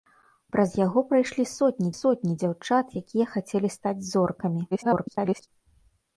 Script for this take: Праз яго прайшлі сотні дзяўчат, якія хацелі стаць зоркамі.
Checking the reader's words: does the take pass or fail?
fail